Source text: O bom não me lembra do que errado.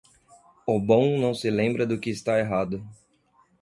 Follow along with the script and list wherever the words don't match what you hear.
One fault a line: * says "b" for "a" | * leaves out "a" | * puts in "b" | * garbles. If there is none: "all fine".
* says "se" for "me"
* puts in "está"